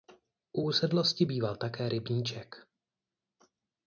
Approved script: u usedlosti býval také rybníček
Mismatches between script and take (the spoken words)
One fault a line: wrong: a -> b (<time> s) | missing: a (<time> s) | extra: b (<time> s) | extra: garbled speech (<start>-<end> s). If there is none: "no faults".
no faults